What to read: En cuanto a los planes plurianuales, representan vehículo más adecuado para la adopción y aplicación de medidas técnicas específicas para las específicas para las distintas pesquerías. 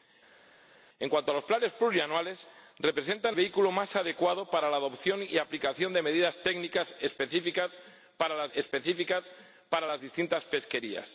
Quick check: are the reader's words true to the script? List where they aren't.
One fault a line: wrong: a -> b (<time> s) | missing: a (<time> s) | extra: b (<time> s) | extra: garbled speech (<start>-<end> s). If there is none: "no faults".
no faults